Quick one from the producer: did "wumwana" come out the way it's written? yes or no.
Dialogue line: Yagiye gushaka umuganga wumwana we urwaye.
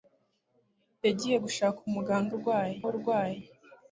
no